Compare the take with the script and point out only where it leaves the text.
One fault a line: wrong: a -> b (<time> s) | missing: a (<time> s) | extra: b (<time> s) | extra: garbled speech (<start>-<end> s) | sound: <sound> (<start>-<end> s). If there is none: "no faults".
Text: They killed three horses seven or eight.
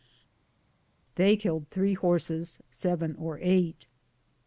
no faults